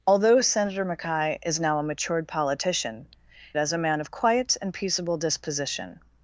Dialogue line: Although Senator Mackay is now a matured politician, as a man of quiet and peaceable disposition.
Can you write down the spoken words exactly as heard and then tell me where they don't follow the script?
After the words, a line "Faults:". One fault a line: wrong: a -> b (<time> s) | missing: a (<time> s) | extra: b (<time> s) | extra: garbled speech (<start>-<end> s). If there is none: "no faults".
Although Senator Mackay is now a matured politician, as a man of quiet and peaceable disposition.
Faults:
no faults